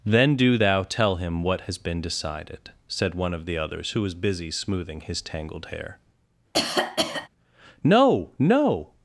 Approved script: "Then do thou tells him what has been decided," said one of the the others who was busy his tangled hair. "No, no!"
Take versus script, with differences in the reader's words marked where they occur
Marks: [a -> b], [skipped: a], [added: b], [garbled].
"Then do thou [tells -> tell] him what has been decided," said one of the [skipped: the] others who was busy [added: smoothing] his tangled hair. "No, no!"